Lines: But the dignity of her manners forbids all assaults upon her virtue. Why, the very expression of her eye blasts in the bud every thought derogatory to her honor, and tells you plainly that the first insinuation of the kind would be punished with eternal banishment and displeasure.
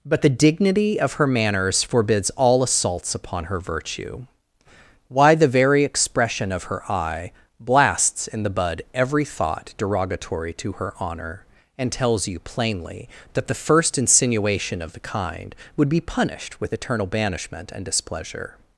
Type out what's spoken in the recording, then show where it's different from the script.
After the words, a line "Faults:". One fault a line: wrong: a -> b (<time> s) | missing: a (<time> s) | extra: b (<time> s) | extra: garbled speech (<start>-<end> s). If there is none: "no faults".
But the dignity of her manners forbids all assaults upon her virtue. Why, the very expression of her eye blasts in the bud every thought derogatory to her honor, and tells you plainly that the first insinuation of the kind would be punished with eternal banishment and displeasure.
Faults:
no faults